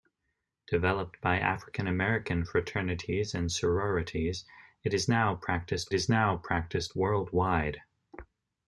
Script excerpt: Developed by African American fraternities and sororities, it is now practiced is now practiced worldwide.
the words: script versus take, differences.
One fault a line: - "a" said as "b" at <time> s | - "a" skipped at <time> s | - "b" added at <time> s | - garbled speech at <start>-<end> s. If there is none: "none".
none